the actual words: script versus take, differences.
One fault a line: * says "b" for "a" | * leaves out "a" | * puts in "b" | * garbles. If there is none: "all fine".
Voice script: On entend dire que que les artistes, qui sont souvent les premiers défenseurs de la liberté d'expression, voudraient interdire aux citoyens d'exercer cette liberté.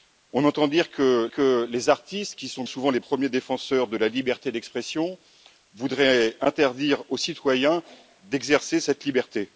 all fine